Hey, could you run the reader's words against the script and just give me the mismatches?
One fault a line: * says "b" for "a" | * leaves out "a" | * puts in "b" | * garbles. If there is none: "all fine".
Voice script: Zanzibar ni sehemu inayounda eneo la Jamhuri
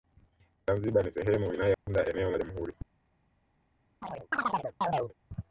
all fine